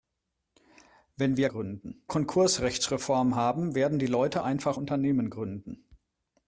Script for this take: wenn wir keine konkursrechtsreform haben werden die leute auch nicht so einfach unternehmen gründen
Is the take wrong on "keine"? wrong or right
wrong